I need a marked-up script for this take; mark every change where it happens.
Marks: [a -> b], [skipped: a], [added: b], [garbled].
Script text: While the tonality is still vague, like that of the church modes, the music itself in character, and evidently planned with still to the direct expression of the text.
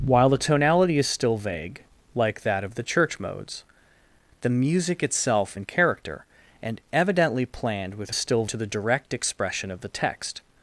While the tonality is still vague, like that of the church modes, the music itself in character, and evidently planned with still to the direct expression of the text.